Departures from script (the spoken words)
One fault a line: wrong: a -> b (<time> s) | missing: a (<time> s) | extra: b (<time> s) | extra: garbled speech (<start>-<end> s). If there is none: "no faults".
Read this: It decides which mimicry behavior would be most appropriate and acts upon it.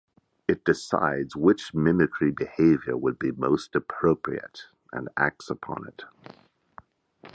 no faults